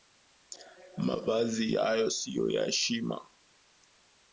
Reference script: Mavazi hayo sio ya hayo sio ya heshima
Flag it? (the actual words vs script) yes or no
yes